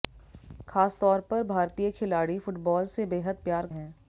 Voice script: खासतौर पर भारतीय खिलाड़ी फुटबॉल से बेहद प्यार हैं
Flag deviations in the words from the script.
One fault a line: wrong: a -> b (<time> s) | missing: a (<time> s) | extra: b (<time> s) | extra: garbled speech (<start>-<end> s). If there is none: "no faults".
no faults